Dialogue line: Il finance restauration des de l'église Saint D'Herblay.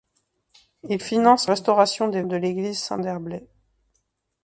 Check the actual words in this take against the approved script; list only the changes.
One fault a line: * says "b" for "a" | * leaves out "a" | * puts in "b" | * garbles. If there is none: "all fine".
all fine